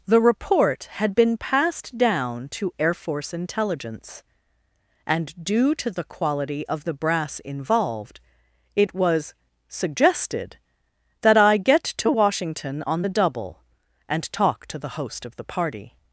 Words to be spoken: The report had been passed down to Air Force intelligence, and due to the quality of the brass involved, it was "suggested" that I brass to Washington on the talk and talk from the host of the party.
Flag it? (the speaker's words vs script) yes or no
yes